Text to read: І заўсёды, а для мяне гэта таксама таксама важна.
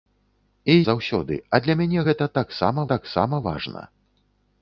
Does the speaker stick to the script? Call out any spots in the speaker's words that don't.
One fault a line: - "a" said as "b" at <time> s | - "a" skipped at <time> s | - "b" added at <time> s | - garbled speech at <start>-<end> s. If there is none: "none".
none